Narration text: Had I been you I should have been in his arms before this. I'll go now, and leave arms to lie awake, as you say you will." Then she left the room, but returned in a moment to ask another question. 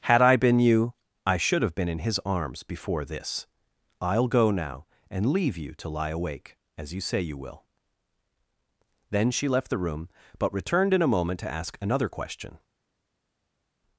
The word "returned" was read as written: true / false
true